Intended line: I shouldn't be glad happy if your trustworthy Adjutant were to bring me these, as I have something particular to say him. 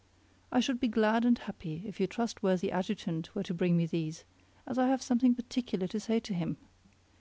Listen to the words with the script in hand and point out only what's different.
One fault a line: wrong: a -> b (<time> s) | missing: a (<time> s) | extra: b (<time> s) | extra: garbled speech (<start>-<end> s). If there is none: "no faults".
wrong: shouldn't -> should (0.6 s)
extra: and (1.2 s)
extra: to (6.2 s)